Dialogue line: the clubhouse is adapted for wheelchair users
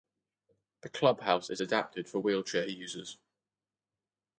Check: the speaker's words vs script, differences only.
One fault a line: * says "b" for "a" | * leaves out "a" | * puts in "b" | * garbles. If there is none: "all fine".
all fine